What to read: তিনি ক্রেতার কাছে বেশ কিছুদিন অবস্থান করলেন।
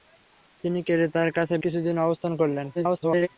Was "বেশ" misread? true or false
true